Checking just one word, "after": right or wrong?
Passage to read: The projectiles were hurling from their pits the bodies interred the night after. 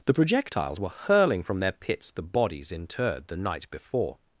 wrong